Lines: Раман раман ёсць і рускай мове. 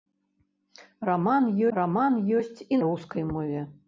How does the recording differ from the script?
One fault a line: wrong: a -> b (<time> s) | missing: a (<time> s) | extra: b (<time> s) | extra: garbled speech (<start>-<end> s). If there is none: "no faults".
no faults